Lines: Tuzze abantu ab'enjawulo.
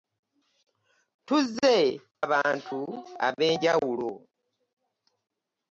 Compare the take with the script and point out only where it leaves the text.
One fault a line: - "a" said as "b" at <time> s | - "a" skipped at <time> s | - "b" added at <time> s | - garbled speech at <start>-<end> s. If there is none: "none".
none